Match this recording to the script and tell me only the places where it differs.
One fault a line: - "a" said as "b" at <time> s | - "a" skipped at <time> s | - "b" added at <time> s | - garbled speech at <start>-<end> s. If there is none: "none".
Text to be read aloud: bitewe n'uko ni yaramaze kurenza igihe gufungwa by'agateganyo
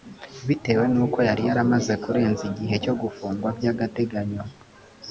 - "ni" said as "yari" at 1.3 s
- "cyo" added at 2.8 s